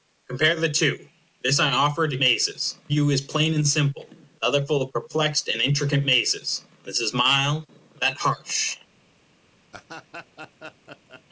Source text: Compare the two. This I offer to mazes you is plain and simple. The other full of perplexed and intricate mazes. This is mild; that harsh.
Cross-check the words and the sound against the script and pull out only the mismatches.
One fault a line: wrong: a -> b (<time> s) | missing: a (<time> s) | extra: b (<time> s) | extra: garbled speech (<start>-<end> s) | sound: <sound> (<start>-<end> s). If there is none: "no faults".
sound: laugh (9.7-11.2 s)